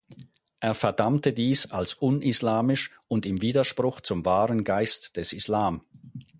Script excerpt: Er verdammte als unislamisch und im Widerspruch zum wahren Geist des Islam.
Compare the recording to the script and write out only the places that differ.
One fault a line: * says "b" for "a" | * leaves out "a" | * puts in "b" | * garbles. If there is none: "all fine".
* puts in "dies"